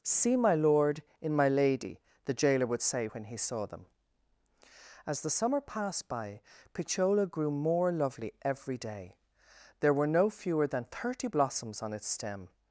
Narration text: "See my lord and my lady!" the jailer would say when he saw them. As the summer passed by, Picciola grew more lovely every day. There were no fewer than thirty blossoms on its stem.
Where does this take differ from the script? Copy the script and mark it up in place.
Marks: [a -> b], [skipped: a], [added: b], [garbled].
"See my lord [and -> in] my lady!" the jailer would say when he saw them. As the summer passed by, Picciola grew more lovely every day. There were no fewer than thirty blossoms on its stem.